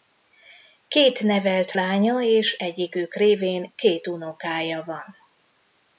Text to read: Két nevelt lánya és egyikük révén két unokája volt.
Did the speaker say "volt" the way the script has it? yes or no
no